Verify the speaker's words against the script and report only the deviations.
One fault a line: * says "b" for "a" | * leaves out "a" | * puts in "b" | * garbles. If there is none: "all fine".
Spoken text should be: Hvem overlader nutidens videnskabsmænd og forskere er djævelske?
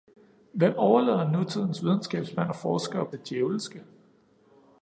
all fine